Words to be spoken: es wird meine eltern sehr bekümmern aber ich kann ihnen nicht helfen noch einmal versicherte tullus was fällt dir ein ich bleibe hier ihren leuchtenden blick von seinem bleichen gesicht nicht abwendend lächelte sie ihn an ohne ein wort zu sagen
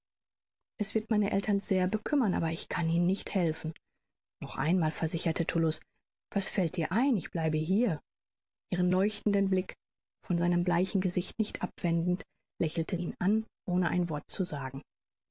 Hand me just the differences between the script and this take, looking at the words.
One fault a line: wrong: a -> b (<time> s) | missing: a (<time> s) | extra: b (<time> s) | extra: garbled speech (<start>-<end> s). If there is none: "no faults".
missing: sie (13.0 s)